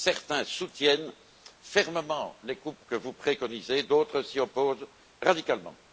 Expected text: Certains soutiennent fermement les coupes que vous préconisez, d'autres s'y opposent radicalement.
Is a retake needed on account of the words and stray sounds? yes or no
no